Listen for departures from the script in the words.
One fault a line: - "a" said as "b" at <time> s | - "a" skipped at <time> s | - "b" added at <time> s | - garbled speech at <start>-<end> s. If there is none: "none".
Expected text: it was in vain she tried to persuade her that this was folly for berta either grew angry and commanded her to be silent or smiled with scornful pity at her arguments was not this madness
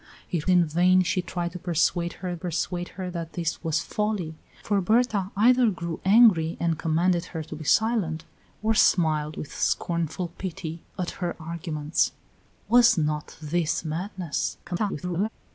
- "was" skipped at 0.5 s
- "persuade her" added at 2.3 s
- garbled speech at 14.6-15.3 s